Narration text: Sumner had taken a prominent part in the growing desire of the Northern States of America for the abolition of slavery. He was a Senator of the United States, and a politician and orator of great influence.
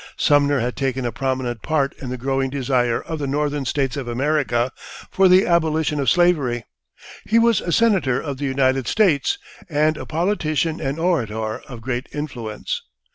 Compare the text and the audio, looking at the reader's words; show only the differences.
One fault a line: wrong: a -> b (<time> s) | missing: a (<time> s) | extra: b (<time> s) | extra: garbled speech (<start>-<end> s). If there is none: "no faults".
no faults